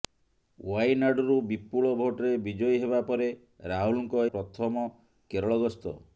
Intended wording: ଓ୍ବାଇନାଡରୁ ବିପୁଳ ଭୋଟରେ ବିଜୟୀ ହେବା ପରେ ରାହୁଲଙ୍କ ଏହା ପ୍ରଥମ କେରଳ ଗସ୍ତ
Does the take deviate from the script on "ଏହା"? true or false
true